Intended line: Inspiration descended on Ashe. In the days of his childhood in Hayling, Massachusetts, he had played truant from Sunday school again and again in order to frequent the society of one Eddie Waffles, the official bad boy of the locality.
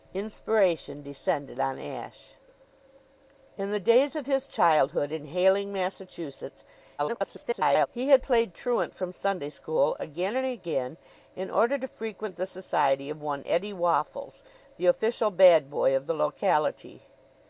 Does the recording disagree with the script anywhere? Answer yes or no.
yes